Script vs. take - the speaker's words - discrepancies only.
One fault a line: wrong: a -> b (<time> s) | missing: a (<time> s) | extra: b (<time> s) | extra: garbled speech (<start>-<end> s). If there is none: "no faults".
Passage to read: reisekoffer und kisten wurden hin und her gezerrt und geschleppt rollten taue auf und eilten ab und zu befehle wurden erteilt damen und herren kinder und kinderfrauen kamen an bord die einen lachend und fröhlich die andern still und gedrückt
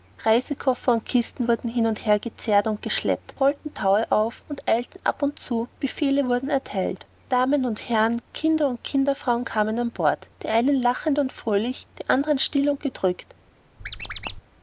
no faults